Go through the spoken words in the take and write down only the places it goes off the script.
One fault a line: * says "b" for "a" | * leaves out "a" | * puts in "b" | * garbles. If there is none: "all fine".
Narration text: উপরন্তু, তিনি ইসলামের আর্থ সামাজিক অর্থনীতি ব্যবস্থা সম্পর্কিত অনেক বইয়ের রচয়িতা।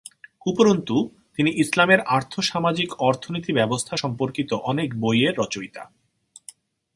all fine